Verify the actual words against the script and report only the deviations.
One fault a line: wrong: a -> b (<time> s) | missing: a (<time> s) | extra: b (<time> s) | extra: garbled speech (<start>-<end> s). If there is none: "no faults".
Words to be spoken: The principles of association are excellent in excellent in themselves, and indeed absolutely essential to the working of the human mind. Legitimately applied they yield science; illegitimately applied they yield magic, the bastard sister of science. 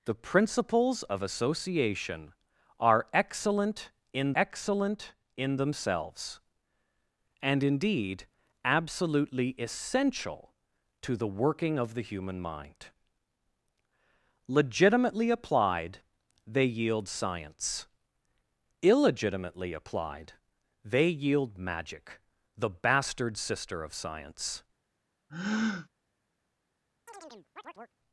no faults